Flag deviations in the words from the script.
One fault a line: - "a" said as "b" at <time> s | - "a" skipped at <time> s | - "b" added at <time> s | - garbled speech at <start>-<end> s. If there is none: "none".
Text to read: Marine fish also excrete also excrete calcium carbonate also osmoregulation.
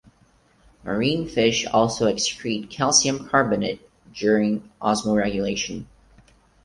- "also excrete" skipped at 2.7 s
- "also" said as "during" at 4.2 s